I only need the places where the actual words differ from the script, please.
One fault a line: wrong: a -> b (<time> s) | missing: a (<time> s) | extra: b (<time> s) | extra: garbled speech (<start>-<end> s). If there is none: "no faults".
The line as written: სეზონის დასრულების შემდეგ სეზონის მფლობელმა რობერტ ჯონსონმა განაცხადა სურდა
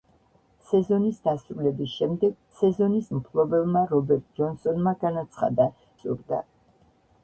no faults